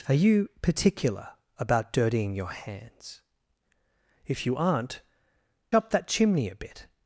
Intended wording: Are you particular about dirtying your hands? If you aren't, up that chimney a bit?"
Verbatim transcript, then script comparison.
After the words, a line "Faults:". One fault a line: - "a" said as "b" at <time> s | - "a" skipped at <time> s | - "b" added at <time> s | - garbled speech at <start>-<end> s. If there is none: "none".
Are you particular about dirtying your hands? If you aren't, up that chimney a bit?"
Faults:
none